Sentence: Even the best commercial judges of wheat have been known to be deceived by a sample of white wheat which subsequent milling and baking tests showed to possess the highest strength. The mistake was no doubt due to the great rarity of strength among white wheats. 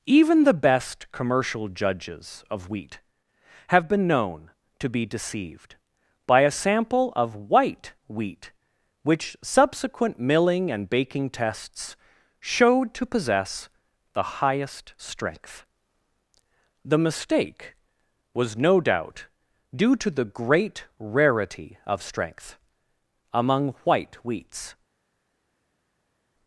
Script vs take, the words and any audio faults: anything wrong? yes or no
no